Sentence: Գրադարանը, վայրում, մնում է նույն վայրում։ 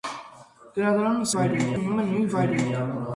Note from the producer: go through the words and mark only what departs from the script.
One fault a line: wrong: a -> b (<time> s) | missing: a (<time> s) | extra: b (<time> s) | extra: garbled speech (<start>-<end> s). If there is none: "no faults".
no faults